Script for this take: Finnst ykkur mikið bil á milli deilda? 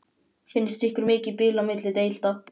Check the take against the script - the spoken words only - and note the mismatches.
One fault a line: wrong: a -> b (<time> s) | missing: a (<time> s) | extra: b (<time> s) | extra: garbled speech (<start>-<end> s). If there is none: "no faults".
no faults